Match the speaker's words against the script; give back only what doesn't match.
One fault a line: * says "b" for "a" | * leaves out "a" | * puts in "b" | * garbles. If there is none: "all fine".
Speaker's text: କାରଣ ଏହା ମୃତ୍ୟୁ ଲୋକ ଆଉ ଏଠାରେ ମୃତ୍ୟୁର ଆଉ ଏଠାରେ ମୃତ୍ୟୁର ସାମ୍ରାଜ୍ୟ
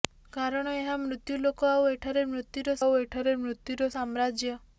all fine